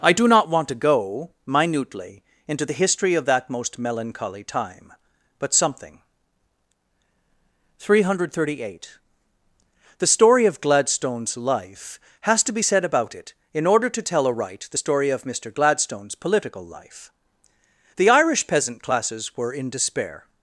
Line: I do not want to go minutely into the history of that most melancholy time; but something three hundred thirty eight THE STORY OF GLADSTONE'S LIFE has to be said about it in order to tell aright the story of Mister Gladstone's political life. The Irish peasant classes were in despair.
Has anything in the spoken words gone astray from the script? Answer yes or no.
no